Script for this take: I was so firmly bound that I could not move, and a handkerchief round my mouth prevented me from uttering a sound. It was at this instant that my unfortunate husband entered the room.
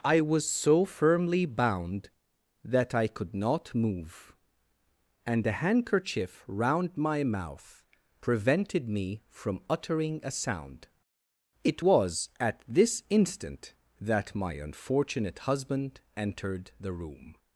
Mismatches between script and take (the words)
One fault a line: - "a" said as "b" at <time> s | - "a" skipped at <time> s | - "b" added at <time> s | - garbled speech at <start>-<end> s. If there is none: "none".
none